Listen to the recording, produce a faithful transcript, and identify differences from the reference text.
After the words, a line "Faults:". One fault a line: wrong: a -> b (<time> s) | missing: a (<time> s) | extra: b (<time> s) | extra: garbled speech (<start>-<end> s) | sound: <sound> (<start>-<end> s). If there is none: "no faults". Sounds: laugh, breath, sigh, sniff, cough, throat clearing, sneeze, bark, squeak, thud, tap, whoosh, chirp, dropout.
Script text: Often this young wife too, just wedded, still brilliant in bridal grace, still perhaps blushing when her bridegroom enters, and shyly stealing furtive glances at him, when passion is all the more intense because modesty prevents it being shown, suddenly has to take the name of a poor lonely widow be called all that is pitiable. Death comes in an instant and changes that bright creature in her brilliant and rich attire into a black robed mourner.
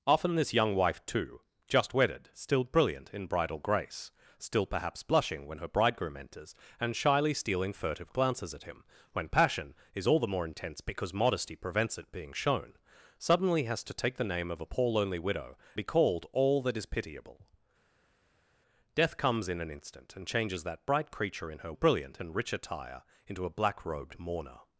Often this young wife too, just wedded, still brilliant in bridal grace, still perhaps blushing when her bridegroom enters, and shyly stealing furtive glances at him, when passion is all the more intense because modesty prevents it being shown, suddenly has to take the name of a poor lonely widow be called all that is pitiable. Death comes in an instant and changes that bright creature in her brilliant and rich attire into a black robed mourner.
Faults:
no faults